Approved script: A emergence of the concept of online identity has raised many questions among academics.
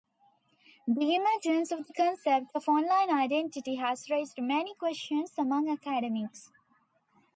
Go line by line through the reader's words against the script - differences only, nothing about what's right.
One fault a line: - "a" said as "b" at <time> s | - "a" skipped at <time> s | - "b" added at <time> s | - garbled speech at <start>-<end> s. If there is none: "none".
- "A" said as "The" at 0.9 s